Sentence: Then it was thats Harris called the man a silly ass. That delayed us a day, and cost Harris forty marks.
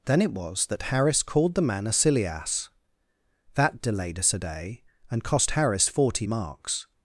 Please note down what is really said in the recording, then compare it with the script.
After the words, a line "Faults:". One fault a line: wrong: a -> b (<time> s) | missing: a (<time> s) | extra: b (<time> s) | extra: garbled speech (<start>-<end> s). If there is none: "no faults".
Then it was that Harris called the man a silly ass. That delayed us a day, and cost Harris forty marks.
Faults:
wrong: thats -> that (0.7 s)